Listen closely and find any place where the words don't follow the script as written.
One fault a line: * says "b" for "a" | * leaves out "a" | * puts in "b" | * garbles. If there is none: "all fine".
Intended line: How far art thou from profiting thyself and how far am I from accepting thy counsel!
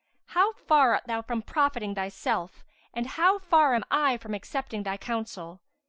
all fine